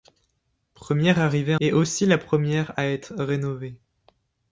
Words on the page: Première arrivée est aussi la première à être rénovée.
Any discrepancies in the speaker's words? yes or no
no